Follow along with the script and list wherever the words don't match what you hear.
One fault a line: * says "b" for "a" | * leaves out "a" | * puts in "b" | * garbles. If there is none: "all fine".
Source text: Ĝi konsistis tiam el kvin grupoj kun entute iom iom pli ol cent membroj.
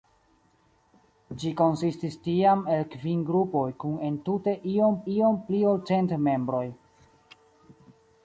all fine